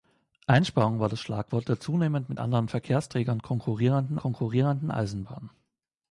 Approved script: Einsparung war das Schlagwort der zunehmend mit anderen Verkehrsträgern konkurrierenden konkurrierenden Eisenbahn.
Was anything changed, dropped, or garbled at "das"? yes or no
no